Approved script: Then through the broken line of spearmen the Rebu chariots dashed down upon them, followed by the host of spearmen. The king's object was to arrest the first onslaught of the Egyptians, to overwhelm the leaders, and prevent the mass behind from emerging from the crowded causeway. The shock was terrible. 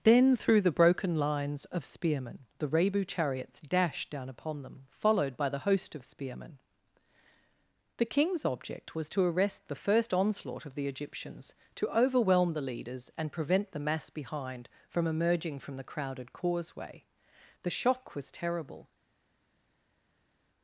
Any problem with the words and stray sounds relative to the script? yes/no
yes